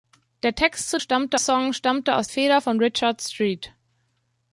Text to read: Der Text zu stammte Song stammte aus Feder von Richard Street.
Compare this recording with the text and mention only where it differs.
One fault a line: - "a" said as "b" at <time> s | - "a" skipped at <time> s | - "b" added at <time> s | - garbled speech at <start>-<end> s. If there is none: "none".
none